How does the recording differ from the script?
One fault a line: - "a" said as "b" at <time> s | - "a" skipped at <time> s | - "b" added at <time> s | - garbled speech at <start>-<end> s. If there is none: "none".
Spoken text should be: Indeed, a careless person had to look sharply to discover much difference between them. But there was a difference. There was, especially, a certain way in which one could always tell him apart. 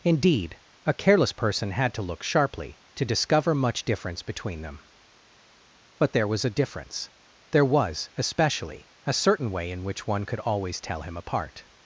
none